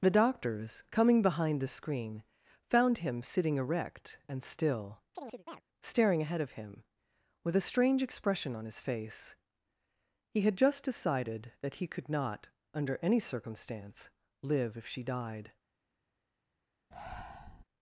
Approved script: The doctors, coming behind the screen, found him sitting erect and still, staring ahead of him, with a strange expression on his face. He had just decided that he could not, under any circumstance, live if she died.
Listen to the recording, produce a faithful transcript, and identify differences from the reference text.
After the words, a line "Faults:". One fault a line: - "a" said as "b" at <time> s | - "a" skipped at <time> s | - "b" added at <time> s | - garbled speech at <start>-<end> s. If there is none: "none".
The doctors, coming behind the screen, found him sitting erect and still, staring ahead of him, with a strange expression on his face. He had just decided that he could not, under any circumstance, live if she died.
Faults:
none